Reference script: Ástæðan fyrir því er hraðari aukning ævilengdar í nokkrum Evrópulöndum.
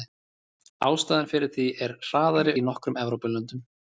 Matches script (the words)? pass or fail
fail